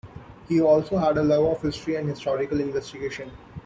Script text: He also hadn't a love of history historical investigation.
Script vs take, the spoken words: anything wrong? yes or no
yes